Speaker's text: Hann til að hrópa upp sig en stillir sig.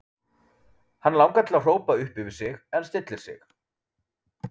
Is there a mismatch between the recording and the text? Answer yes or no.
yes